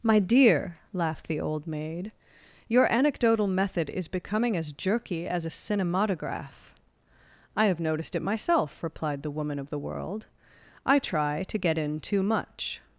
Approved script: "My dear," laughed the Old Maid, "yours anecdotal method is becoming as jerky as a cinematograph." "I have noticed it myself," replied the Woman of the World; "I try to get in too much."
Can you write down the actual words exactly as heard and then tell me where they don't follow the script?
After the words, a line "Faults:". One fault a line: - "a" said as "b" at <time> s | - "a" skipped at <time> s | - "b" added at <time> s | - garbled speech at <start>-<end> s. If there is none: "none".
"My dear," laughed the Old Maid, "your anecdotal method is becoming as jerky as a cinematograph." "I have noticed it myself," replied the Woman of the World; "I try to get in too much."
Faults:
- "yours" said as "your" at 2.7 s